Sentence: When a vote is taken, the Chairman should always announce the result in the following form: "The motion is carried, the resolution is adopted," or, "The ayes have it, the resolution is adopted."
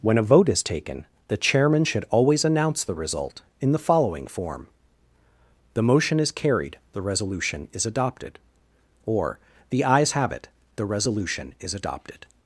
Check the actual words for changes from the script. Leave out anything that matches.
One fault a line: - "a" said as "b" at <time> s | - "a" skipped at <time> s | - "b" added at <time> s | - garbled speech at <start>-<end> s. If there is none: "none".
none